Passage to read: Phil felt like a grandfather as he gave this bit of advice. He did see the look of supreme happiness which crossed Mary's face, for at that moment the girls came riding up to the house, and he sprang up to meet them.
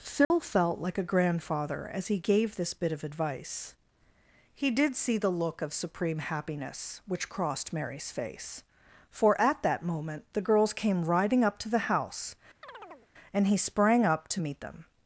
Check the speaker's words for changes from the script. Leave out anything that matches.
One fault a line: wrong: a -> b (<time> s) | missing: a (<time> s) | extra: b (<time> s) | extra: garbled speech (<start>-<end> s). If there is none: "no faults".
no faults